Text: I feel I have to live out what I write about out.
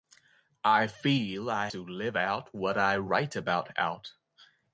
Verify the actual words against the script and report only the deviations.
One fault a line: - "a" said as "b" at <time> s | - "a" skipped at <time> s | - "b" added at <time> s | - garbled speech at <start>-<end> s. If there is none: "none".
- "have" skipped at 1.7 s